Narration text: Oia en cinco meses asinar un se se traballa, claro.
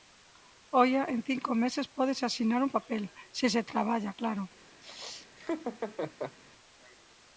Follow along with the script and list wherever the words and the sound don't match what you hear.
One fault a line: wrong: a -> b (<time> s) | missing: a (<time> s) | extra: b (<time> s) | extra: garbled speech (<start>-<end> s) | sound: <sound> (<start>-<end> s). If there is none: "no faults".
extra: pódese (1.9 s)
extra: papel (2.8 s)
sound: laugh (4.8-6.4 s)